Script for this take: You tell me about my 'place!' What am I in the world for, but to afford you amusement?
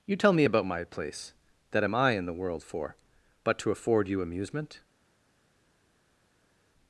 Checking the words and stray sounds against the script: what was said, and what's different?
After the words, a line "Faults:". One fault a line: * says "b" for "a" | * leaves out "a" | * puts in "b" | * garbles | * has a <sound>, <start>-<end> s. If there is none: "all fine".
You tell me about my 'place!' That am I in the world for, but to afford you amusement?
Faults:
* says "That" for "What"